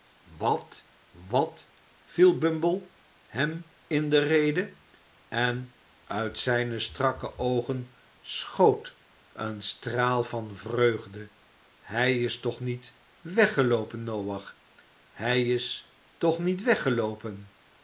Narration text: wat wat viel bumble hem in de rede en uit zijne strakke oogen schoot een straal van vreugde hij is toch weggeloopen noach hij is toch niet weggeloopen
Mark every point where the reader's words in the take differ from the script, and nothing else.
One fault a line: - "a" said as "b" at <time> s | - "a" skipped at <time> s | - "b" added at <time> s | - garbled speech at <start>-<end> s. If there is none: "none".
- "niet" added at 12.6 s